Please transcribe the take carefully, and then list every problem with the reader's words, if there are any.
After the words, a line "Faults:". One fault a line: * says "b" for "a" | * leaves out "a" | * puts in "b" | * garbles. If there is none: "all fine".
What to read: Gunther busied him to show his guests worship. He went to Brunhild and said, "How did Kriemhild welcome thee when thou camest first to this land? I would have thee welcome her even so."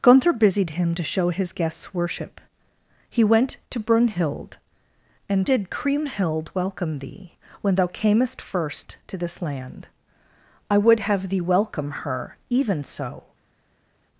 Gunther busied him to show his guests worship. He went to Brunhild and did Kriemhild welcome thee when thou camest first to this land? I would have thee welcome her even so."
Faults:
* leaves out "said How"